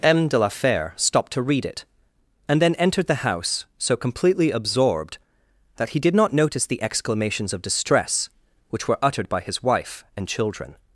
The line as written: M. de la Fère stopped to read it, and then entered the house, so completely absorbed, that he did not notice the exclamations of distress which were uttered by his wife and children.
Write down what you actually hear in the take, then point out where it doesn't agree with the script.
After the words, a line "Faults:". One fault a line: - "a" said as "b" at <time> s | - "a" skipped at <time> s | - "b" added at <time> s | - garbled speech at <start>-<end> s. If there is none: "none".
M. de la Fère stopped to read it, and then entered the house, so completely absorbed, that he did not notice the exclamations of distress which were uttered by his wife and children.
Faults:
none